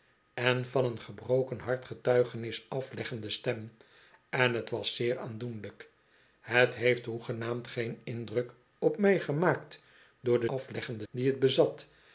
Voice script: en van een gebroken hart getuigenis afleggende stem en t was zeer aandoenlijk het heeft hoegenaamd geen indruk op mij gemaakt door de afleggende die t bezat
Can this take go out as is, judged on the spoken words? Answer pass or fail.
pass